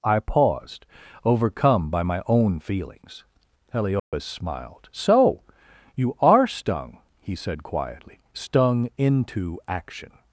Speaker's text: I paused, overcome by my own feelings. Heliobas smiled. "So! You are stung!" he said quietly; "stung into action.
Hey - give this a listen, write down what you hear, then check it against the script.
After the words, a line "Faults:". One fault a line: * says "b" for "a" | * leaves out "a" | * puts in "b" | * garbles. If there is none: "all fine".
I paused, overcome by my own feelings. Heliobas smiled. "So! You are stung!" he said quietly; "stung into action.
Faults:
all fine